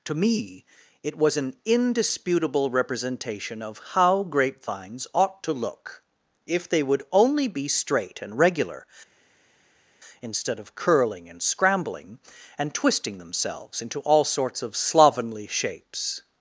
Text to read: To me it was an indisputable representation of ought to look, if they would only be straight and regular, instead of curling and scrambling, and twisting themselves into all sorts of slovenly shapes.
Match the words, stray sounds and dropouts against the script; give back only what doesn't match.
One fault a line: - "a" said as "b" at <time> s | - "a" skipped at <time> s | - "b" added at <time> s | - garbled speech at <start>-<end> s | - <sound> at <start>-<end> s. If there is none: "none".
- "how grapevines" added at 3.9 s